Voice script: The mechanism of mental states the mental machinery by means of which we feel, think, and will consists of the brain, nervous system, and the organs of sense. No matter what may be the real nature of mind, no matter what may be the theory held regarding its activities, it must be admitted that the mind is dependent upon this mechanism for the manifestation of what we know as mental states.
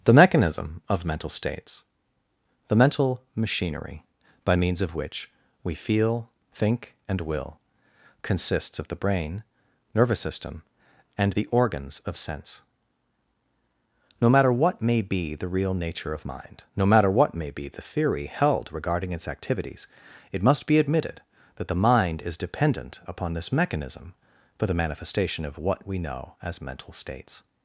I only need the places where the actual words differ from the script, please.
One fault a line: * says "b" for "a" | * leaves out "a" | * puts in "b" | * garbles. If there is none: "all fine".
all fine